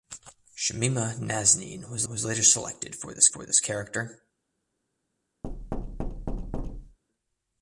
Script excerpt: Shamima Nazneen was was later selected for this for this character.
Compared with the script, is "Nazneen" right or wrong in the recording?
right